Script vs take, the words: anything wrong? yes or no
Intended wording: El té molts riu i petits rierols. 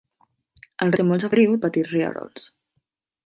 no